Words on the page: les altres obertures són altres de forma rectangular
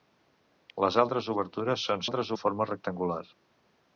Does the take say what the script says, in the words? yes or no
yes